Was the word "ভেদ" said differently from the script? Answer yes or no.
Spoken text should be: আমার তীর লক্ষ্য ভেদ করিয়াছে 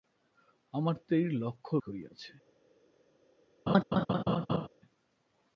yes